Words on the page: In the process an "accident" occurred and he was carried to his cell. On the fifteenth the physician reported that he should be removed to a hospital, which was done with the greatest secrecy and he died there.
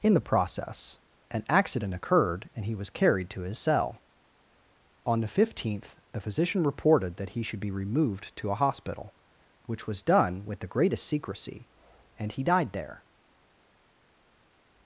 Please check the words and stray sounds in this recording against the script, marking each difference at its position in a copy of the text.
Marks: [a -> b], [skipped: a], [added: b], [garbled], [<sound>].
In the process an "accident" occurred and he was carried to his cell. On the fifteenth the physician reported that he should be removed to a hospital, which was done with the greatest secrecy and he died there.